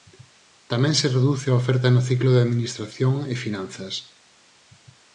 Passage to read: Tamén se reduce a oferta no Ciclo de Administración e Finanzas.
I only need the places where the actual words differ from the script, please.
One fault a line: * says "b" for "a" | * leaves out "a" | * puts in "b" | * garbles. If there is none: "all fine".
all fine